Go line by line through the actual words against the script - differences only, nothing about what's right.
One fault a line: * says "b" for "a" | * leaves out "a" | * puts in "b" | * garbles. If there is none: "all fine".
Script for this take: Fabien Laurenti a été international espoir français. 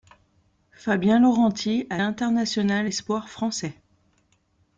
* leaves out "été"